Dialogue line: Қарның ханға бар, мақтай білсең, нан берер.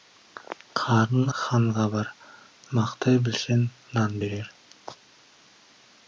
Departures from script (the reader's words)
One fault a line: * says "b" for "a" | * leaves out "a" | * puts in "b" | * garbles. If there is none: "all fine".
all fine